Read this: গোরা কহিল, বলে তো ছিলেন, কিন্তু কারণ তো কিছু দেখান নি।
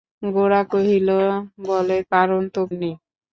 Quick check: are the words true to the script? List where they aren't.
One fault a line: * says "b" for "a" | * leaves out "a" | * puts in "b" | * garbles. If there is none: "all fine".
* leaves out "তো ছিলেন কিন্তু"
* leaves out "কিছু দেখান"